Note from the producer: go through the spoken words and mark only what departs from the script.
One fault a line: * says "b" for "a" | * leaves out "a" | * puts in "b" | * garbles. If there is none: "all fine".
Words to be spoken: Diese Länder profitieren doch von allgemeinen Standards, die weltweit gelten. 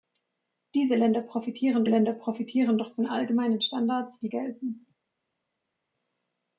* puts in "Länder profitieren"
* leaves out "weltweit"